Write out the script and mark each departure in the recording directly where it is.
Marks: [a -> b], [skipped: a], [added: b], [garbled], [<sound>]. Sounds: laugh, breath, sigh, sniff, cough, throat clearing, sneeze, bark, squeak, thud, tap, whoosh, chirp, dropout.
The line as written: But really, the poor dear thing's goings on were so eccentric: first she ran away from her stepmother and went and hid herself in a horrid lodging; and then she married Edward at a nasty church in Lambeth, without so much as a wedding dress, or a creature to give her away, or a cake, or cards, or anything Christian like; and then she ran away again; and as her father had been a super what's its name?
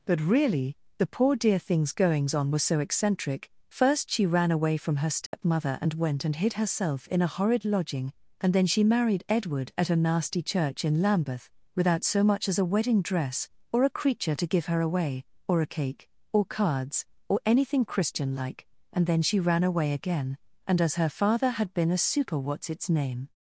But really, the poor dear thing's goings on were so eccentric: first she ran away from her stepmother [dropout] and went and hid herself in a horrid lodging; and then she married Edward at a nasty church in Lambeth, without so much as a wedding dress, or a creature to give her away, or a cake, or cards, or anything Christian like; and then she ran away again; and as her father had been a super what's its name?